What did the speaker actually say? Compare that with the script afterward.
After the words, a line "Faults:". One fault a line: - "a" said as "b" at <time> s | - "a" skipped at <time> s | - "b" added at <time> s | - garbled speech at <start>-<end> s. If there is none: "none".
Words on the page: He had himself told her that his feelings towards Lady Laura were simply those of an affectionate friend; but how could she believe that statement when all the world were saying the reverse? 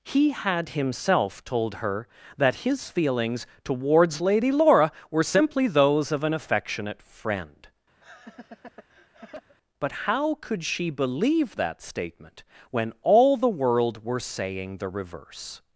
He had himself told her that his feelings towards Lady Laura were simply those of an affectionate friend; but how could she believe that statement when all the world were saying the reverse?
Faults:
none